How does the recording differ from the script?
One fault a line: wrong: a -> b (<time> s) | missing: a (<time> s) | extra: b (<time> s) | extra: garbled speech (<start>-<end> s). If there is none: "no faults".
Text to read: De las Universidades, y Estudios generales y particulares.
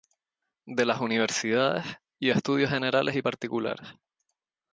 no faults